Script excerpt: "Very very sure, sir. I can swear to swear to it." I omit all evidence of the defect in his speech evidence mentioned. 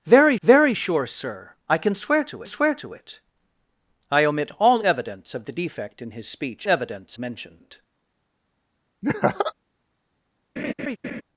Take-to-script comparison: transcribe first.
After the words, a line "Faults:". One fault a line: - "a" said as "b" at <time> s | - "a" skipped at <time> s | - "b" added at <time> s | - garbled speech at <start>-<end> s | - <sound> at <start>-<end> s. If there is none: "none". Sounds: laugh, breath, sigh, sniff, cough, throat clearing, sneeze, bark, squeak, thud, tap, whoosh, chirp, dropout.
"Very very sure, sir. I can swear to swear to it." I omit all evidence of the defect in his speech evidence mentioned.
Faults:
- laugh at 9.0-9.5 s
- laugh at 10.6-11.2 s